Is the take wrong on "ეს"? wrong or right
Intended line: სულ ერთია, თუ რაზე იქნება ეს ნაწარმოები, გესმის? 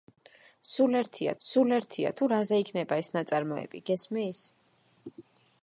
right